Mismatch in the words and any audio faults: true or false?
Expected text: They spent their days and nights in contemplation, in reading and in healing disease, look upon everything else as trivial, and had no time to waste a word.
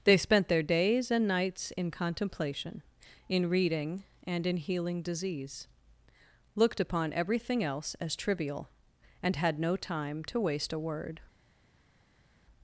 true